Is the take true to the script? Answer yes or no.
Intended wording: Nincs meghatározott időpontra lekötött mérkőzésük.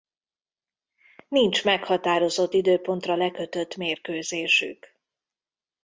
yes